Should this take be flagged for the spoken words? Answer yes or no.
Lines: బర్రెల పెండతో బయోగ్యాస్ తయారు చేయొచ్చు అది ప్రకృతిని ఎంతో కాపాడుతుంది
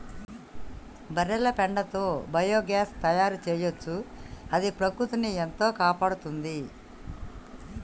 no